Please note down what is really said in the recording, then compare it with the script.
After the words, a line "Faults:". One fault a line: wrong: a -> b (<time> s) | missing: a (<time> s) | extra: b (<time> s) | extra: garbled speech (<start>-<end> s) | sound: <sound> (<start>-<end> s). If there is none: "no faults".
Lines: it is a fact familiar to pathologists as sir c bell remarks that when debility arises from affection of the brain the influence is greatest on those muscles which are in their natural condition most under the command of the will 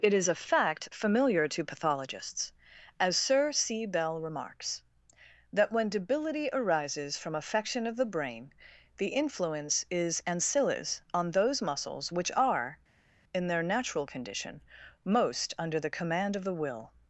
it is a fact familiar to pathologists as sir c bell remarks that when debility arises from affection of the brain the influence is ancillis on those muscles which are in their natural condition most under the command of the will
Faults:
wrong: greatest -> ancillis (10.2 s)